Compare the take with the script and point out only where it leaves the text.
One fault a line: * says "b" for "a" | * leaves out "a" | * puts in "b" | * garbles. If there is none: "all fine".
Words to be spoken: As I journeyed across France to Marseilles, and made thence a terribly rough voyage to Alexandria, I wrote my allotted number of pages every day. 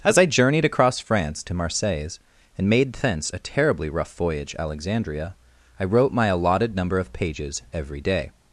* leaves out "to"